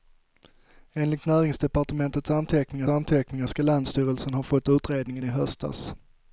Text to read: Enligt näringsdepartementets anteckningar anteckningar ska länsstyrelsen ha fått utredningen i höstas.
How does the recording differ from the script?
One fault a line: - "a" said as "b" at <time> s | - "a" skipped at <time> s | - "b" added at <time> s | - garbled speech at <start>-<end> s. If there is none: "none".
none